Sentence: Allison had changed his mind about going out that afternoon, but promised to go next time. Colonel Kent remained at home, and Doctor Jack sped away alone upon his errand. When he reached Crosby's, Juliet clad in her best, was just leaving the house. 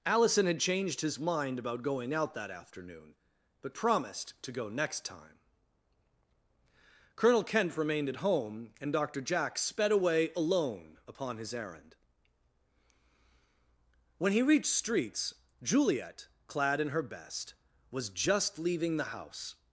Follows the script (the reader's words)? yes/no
no